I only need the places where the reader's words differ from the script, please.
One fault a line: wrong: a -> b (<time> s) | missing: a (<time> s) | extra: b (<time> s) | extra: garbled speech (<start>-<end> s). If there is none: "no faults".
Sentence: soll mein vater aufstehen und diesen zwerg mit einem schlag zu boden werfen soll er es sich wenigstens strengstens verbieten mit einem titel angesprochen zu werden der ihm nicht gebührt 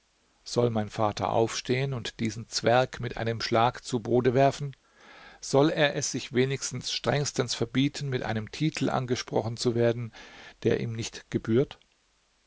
no faults